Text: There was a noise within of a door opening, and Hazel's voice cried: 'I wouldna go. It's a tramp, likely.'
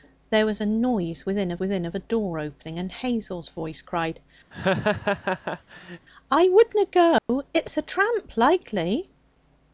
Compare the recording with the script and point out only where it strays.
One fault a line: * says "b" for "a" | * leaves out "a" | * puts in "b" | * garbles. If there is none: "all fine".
* puts in "within of"